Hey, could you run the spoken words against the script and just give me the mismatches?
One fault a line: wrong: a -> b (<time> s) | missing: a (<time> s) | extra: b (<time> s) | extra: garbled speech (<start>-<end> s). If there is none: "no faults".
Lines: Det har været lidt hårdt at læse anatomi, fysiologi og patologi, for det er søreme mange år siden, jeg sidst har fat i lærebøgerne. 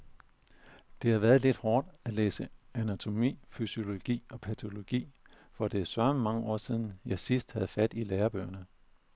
wrong: har -> havde (7.5 s)